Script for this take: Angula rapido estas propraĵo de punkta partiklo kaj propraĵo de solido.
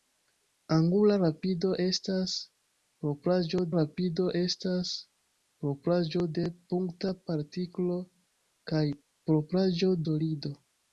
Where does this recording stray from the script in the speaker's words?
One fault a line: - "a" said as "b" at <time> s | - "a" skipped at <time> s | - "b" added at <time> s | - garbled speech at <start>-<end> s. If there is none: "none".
- "rapido estas propraĵo" added at 3.8 s
- "de" skipped at 10.0 s